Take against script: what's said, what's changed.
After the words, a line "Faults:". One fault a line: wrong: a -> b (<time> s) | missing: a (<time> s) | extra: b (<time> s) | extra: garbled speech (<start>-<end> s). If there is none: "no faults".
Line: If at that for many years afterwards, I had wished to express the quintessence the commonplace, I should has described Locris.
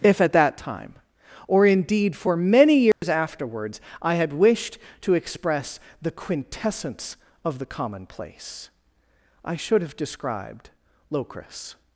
If at that time, or indeed for many years afterwards, I had wished to express the quintessence of the commonplace, I should have described Locris.
Faults:
extra: time or indeed (0.6 s)
extra: of (7.4 s)
wrong: has -> have (9.8 s)